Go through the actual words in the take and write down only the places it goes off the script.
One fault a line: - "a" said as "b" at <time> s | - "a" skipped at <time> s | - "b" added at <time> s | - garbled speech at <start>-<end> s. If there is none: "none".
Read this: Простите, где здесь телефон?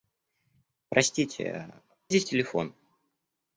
- "где" skipped at 1.7 s